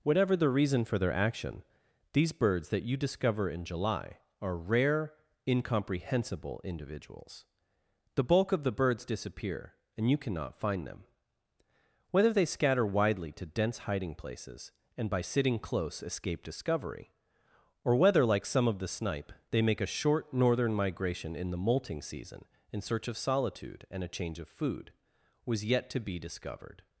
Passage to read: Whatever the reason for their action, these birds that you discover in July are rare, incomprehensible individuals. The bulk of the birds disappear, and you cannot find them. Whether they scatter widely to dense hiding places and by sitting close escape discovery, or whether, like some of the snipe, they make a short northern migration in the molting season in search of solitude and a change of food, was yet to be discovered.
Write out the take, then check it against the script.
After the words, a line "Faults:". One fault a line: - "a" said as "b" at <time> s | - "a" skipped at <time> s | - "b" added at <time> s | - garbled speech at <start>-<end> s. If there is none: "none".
Whatever the reason for their action, these birds that you discover in July are rare, incomprehensible individuals. The bulk of the birds disappear, and you cannot find them. Whether they scatter widely to dense hiding places and by sitting close escape discovery, or whether, like some of the snipe, they make a short northern migration in the molting season in search of solitude and a change of food, was yet to be discovered.
Faults:
none